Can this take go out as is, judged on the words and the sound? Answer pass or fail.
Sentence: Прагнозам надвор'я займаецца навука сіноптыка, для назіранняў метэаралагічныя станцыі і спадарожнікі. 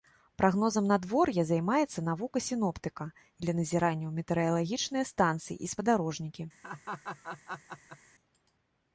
fail